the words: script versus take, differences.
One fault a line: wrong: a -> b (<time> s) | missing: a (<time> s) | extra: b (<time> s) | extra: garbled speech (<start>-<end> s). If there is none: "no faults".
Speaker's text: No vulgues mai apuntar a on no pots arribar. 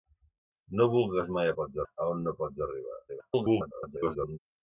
wrong: apuntar -> pots (1.6 s)
extra: garbled speech (3.1-4.4 s)